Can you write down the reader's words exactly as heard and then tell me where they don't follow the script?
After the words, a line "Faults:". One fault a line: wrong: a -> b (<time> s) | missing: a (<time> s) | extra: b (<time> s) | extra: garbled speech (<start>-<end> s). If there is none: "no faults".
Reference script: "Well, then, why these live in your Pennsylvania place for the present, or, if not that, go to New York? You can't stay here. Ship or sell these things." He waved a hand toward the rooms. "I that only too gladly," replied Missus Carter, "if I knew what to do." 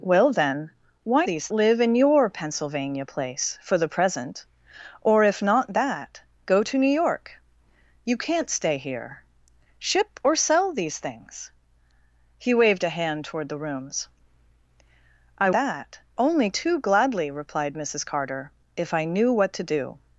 "Well, then, why these live in your Pennsylvania place for the present, or, if not that, go to New York? You can't stay here. Ship or sell these things." He waved a hand toward the rooms. "I that only too gladly," replied Missus Carter, "if I knew what to do."
Faults:
no faults